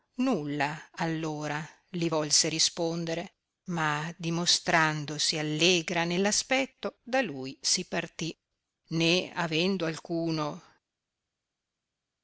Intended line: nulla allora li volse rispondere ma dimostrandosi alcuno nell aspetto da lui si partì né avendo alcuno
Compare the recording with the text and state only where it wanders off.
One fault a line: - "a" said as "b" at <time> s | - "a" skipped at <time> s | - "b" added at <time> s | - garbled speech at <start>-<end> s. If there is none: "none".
- "alcuno" said as "allegra" at 5.4 s